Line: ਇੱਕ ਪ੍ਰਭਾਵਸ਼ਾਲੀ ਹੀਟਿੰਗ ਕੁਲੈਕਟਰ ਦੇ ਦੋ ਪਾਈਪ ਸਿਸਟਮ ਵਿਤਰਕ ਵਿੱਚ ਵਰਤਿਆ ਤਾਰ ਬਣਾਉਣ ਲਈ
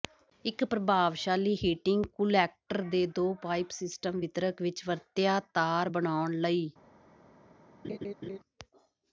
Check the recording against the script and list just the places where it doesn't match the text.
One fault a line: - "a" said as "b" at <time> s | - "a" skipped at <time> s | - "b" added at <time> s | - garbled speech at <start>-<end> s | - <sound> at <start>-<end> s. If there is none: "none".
- laugh at 7.8-8.4 s